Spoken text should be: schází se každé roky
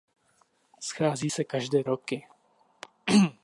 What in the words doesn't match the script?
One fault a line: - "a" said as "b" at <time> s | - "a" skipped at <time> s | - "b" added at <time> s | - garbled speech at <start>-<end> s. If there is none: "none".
none